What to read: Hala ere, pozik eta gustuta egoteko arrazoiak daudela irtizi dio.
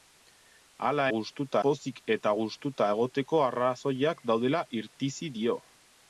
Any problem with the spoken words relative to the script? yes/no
yes